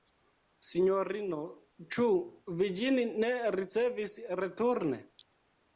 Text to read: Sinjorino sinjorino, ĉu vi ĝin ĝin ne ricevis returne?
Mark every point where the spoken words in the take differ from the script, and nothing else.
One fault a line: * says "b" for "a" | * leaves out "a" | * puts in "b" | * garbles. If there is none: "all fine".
* leaves out "sinjorino"
* leaves out "ĝin"